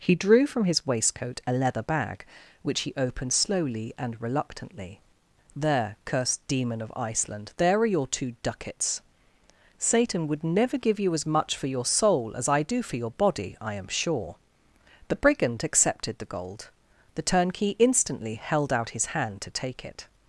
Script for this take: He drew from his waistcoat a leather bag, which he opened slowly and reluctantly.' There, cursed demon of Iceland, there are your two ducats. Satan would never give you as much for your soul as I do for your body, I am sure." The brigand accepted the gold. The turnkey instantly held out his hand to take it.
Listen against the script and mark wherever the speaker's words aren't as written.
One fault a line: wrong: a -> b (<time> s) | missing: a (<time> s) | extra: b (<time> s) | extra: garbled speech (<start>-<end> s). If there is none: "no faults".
no faults